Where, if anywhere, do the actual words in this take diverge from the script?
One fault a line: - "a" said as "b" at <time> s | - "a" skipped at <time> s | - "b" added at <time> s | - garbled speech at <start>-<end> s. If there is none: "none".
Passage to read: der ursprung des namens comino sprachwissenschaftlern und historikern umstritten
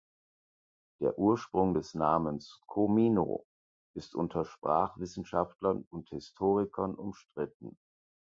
- "ist unter" added at 3.9 s